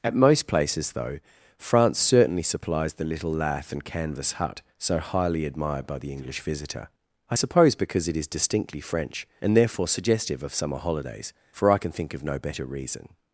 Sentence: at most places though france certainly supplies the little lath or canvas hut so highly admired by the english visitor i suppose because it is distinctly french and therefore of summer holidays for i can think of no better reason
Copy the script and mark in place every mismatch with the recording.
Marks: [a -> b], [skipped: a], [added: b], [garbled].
at most places though france certainly supplies the little lath [or -> and] canvas hut so highly admired by the english visitor i suppose because it is distinctly french and therefore [added: suggestive] of summer holidays for i can think of no better reason